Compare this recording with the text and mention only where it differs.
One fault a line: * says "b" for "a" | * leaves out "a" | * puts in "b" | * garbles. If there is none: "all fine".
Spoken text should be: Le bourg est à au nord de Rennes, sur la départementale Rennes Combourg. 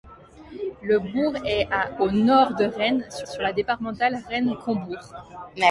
* puts in "sur"